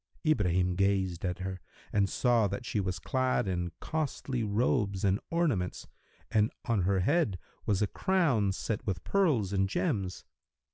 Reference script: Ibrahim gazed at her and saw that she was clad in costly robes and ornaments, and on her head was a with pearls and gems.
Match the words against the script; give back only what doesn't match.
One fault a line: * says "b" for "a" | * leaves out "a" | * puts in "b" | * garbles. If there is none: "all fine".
* puts in "crown set"